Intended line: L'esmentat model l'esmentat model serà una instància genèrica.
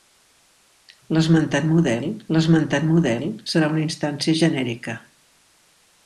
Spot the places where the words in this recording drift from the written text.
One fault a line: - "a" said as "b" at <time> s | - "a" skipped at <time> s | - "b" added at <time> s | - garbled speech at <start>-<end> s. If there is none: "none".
none